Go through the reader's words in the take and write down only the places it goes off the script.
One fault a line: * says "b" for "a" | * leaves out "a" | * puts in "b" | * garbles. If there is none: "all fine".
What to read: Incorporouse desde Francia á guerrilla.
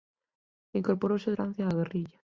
* leaves out "desde"